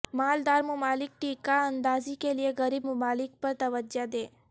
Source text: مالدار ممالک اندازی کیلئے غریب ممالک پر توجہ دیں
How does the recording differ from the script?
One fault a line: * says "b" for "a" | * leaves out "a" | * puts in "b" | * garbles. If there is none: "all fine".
* puts in "ٹیکہ"